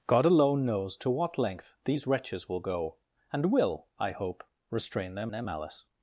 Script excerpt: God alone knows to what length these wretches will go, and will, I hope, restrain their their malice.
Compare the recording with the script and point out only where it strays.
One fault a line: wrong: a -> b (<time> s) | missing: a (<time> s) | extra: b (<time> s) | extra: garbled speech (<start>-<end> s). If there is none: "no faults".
no faults